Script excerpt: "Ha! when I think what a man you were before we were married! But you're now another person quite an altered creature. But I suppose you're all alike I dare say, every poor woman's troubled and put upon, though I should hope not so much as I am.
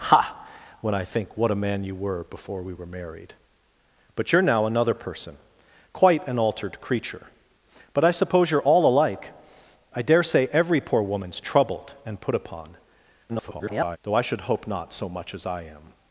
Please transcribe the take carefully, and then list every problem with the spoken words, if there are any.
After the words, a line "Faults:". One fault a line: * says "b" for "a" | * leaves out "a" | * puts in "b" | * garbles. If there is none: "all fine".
"Ha! when I think what a man you were before we were married! But you're now another person quite an altered creature. But I suppose you're all alike I dare say, every poor woman's troubled and put upon, [garbled] though I should hope not so much as I am.
Faults:
* garbles